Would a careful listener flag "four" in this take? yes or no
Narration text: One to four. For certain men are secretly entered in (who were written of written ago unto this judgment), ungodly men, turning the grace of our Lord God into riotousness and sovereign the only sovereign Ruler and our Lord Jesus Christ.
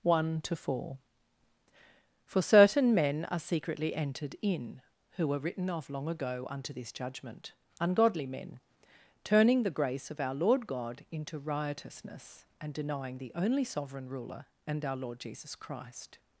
no